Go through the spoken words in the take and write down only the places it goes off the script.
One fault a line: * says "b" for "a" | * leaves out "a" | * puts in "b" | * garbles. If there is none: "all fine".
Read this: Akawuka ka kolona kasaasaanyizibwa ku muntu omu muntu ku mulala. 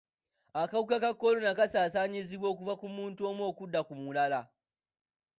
* puts in "okuva"
* says "okudda" for "muntu"